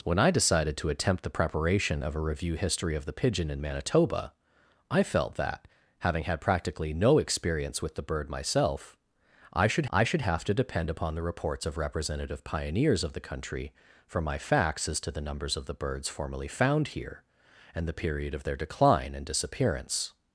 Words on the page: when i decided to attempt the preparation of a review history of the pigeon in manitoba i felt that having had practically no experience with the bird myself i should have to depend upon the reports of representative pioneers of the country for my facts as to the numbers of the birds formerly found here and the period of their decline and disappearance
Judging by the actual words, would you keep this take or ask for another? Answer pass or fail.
fail